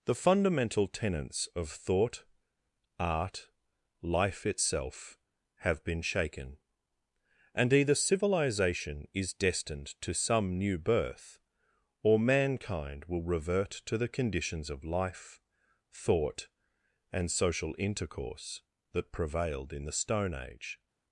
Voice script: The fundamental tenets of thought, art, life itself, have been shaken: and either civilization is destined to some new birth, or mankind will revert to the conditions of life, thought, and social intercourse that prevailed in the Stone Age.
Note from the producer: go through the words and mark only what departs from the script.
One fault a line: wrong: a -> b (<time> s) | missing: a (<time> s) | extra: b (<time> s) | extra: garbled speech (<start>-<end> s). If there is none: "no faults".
no faults